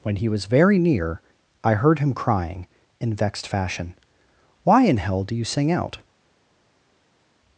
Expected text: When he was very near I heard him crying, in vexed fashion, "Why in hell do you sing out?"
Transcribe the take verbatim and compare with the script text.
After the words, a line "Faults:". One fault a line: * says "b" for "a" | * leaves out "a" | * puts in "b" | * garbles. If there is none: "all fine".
When he was very near I heard him crying, in vexed fashion, "Why in hell do you sing out?"
Faults:
all fine